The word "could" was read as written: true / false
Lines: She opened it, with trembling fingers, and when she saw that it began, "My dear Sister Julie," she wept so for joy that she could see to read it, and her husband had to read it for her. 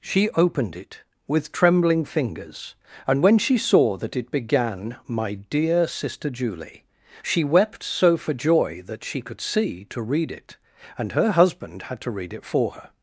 true